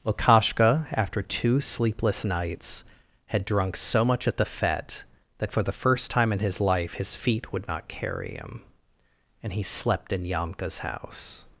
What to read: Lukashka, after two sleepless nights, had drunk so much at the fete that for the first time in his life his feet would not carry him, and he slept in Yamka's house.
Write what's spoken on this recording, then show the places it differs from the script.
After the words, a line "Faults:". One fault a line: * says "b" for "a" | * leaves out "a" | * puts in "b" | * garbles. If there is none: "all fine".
Lukashka, after two sleepless nights, had drunk so much at the fete that for the first time in his life his feet would not carry him, and he slept in Yamka's house.
Faults:
all fine